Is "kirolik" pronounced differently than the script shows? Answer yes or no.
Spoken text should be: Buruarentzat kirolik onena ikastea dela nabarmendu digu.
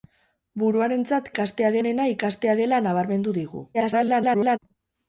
yes